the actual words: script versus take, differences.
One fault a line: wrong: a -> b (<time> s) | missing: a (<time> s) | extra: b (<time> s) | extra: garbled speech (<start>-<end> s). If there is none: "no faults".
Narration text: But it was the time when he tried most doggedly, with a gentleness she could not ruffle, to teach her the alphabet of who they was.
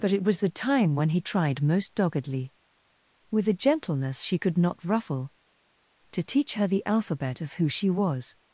wrong: they -> she (7.7 s)